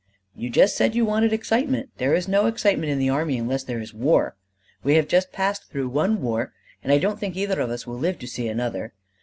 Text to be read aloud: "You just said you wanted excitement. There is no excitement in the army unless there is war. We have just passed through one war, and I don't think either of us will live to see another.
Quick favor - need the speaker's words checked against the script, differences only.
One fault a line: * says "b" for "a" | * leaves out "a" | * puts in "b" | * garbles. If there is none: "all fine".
all fine